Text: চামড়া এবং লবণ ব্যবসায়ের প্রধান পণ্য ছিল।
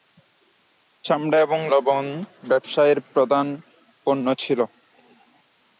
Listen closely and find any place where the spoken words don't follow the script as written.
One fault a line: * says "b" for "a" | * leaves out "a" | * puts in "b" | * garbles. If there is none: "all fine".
all fine